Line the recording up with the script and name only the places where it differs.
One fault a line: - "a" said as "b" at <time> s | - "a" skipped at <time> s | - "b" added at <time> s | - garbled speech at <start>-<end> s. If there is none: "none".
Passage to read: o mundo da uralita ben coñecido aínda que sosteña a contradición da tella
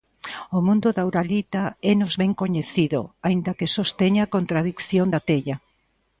- "énos" added at 1.9 s